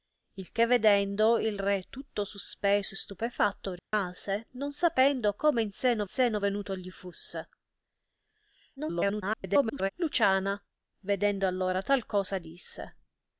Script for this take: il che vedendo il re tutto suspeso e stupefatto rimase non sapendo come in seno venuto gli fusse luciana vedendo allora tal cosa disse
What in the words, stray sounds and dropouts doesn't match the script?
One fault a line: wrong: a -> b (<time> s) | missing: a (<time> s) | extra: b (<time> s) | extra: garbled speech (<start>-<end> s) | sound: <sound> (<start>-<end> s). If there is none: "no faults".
sound: dropout (3.8-3.9 s)
extra: seno (6.0 s)
extra: garbled speech (8.8-9.9 s)